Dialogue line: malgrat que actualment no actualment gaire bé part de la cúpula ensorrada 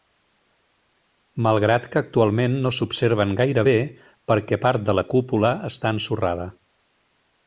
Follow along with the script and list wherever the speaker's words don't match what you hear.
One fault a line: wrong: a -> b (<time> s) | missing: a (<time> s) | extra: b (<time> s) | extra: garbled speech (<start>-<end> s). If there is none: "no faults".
wrong: actualment -> s'observen (2.8 s)
extra: perquè (4.3 s)
extra: està (5.7 s)